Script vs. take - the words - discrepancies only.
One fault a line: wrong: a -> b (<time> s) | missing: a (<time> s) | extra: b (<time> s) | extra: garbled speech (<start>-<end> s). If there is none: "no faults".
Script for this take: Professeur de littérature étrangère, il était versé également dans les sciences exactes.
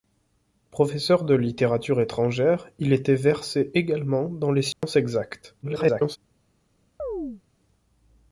extra: garbled speech (5.6-6.2 s)